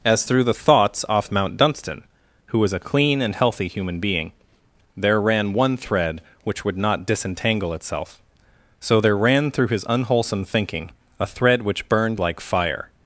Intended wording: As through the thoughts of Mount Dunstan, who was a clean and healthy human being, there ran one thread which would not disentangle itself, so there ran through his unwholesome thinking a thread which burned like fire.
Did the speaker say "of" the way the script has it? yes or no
no